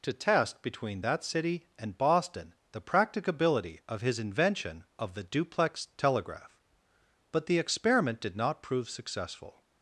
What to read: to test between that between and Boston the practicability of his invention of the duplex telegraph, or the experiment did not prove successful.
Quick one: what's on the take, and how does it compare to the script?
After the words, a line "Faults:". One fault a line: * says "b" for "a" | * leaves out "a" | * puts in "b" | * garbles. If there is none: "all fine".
to test between that city and Boston the practicability of his invention of the duplex telegraph, but the experiment did not prove successful.
Faults:
* says "city" for "between"
* says "but" for "or"